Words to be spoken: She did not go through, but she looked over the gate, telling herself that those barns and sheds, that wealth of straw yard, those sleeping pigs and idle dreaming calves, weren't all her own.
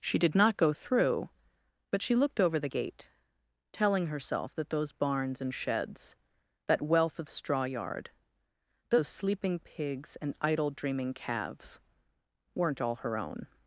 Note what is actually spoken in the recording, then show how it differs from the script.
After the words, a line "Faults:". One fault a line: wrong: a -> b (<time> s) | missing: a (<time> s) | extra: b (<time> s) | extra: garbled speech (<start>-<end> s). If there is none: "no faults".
She did not go through, but she looked over the gate, telling herself that those barns and sheds, that wealth of straw yard, those sleeping pigs and idle dreaming calves, weren't all her own.
Faults:
no faults